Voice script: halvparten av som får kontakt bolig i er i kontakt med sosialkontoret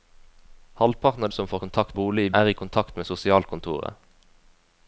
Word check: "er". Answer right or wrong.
right